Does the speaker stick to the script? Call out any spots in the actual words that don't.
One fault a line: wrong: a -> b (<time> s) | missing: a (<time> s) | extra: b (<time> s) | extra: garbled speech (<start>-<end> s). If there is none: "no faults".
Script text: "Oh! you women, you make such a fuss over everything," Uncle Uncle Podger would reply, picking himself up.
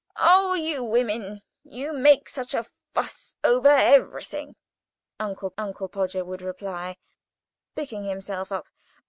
no faults